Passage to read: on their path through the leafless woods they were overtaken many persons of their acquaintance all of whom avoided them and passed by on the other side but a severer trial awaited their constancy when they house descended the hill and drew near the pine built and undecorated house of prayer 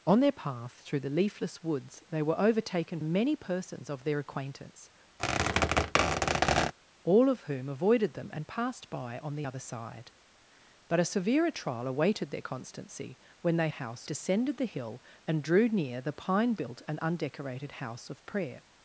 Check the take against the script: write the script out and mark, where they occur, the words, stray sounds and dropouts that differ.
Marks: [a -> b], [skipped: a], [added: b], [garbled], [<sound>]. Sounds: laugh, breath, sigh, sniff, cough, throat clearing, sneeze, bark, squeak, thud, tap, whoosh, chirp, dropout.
on their path through the leafless woods they were overtaken many persons of their acquaintance [squeak] all of whom avoided them and passed by on the other side but a severer trial awaited their constancy when they house descended the hill and drew near the pine built and undecorated house of prayer